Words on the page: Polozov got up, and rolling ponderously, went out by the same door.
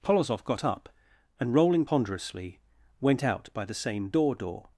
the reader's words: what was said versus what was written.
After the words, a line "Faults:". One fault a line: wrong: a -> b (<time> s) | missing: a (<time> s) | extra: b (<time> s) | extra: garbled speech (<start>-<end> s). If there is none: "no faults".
Polozov got up, and rolling ponderously, went out by the same door door.
Faults:
extra: door (4.3 s)